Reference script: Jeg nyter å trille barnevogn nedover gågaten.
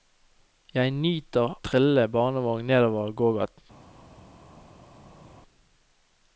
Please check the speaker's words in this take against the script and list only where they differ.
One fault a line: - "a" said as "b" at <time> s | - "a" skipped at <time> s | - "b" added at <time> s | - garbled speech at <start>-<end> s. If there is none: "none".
- "å" skipped at 1.5 s